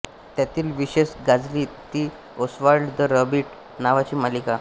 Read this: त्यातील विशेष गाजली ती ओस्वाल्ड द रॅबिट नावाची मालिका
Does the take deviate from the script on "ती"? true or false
false